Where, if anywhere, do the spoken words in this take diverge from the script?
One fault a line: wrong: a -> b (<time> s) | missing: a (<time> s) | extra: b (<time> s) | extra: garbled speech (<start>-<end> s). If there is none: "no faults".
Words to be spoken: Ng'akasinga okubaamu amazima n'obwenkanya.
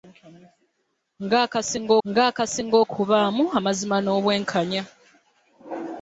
extra: ng'akasinga (2.1 s)